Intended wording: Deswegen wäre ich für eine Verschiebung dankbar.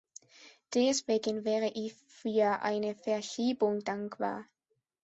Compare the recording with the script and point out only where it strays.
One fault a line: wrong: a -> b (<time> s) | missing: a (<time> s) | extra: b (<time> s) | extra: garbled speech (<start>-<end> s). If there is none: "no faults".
no faults